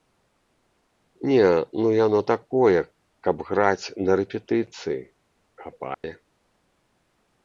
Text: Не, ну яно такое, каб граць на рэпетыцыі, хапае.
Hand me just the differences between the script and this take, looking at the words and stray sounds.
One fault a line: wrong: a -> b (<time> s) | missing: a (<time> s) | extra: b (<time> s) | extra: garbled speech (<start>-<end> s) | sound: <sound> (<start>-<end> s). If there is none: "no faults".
sound: dropout (5.9-6.0 s)